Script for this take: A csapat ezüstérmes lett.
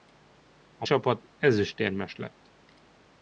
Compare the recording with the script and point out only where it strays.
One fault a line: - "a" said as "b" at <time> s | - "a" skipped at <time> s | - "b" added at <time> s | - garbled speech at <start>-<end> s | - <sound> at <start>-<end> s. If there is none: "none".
none